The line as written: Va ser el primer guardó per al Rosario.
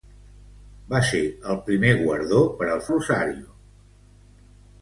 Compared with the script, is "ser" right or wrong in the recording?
right